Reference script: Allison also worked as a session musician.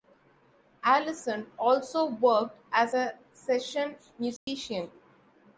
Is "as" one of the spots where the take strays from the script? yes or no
no